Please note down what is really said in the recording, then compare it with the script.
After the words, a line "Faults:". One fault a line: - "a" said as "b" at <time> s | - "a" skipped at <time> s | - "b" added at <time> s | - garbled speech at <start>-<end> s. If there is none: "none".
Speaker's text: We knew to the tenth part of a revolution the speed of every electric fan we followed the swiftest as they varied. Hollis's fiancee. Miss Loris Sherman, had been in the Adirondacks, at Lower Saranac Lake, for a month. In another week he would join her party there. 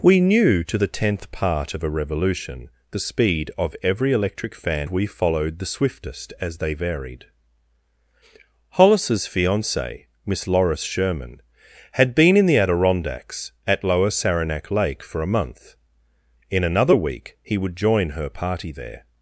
We knew to the tenth part of a revolution the speed of every electric fan we followed the swiftest as they varied. Hollis's fiancee. Miss Loris Sherman, had been in the Adirondacks, at Lower Saranac Lake, for a month. In another week he would join her party there.
Faults:
none